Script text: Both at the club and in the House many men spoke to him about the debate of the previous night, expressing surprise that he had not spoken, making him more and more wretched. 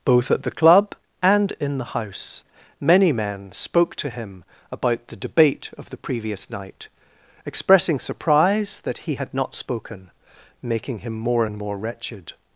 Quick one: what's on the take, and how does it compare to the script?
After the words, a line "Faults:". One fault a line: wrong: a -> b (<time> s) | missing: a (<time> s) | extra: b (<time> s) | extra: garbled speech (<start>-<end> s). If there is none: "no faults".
Both at the club and in the House many men spoke to him about the debate of the previous night, expressing surprise that he had not spoken, making him more and more wretched.
Faults:
no faults